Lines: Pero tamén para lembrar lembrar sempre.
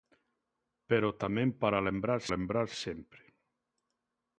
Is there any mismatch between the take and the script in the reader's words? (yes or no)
no